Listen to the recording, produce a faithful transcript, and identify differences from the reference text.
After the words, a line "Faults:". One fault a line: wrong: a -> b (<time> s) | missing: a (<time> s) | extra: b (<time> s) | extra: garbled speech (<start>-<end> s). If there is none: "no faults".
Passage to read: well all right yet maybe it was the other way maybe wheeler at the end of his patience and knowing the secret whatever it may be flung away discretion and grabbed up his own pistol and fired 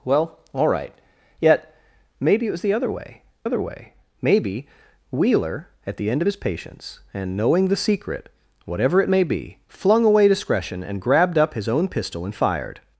well all right yet maybe it was the other way other way maybe wheeler at the end of his patience and knowing the secret whatever it may be flung away discretion and grabbed up his own pistol and fired
Faults:
extra: other way (3.4 s)